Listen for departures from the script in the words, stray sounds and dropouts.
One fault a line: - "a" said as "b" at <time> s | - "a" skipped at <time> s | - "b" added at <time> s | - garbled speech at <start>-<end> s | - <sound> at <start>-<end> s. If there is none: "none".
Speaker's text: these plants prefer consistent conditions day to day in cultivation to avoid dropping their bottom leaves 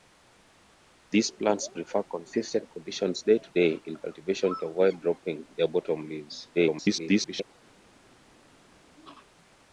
- garbled speech at 6.5-7.5 s